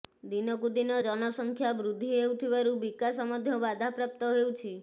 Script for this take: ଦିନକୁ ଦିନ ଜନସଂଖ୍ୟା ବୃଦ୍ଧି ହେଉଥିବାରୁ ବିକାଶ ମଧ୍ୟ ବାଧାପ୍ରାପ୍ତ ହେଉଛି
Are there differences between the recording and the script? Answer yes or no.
no